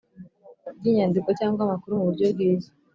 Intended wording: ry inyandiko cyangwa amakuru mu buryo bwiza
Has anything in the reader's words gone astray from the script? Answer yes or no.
no